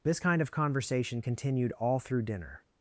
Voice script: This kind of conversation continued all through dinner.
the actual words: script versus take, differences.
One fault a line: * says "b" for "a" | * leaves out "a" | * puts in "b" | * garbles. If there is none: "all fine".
all fine